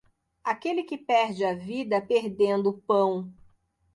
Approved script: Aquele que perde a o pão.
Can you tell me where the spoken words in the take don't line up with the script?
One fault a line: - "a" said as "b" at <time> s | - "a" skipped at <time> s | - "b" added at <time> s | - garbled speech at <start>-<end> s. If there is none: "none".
- "vida perdendo" added at 1.5 s